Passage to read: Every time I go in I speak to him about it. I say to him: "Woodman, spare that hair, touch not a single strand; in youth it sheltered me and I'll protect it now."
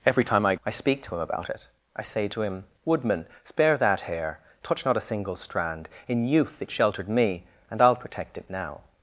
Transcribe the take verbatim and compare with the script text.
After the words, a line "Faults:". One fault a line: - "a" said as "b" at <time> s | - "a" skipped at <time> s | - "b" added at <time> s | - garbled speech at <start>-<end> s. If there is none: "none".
Every time I I speak to him about it. I say to him: "Woodman, spare that hair, touch not a single strand; in youth it sheltered me and I'll protect it now."
Faults:
- "go in" skipped at 0.6 s